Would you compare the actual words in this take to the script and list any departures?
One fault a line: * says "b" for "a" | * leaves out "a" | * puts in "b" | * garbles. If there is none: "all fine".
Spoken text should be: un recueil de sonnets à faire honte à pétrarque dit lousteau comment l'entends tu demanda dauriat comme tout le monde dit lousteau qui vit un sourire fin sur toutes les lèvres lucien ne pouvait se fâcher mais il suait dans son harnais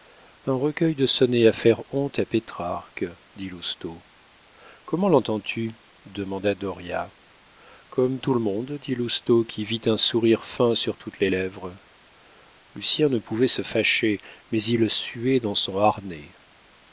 all fine